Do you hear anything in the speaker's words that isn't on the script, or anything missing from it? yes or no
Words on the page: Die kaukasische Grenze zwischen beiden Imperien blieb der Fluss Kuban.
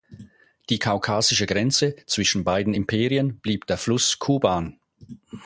no